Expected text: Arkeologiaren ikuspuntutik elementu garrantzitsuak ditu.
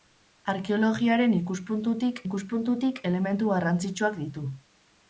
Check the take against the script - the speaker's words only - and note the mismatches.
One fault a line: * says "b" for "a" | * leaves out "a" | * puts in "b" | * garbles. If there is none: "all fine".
* puts in "ikuspuntutik"